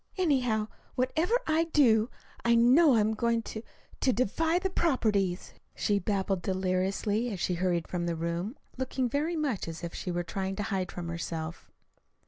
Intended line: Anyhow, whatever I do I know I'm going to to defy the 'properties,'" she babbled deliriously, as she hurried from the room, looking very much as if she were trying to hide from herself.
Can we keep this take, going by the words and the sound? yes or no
yes